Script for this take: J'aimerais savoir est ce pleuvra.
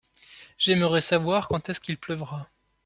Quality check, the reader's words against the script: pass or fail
fail